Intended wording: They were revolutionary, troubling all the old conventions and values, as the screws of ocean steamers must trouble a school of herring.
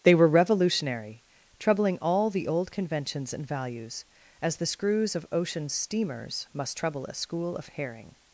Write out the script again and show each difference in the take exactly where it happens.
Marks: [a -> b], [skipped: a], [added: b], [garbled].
They were revolutionary, troubling all the old conventions and values, as the screws of ocean steamers must trouble a school of herring.